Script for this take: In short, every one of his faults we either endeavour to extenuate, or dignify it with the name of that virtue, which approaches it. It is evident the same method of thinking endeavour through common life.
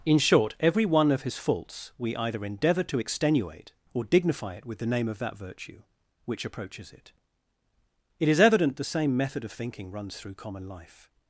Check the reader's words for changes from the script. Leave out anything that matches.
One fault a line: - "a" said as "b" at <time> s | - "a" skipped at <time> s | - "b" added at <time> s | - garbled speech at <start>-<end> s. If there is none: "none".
- "endeavour" said as "runs" at 9.9 s